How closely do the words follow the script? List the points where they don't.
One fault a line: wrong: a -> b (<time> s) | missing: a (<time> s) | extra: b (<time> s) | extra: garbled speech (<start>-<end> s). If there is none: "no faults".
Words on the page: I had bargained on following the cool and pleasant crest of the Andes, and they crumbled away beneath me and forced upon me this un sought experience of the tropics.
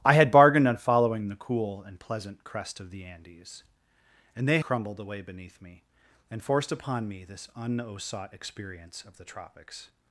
no faults